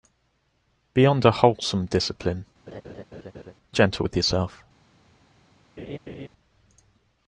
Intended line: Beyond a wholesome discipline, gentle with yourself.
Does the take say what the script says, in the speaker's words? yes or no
yes